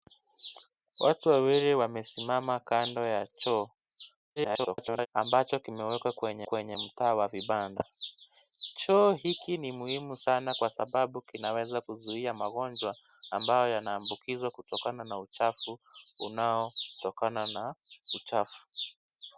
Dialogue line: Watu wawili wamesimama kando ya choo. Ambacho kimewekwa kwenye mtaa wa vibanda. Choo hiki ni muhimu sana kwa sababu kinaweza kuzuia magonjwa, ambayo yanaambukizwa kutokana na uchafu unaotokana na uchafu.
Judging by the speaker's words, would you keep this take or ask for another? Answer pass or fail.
fail